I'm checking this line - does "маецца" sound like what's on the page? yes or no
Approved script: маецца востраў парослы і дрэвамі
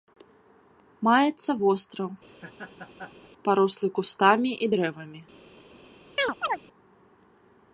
yes